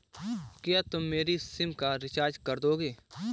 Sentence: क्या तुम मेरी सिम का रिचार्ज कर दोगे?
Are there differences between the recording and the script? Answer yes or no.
no